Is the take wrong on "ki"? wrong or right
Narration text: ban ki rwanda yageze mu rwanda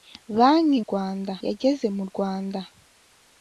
right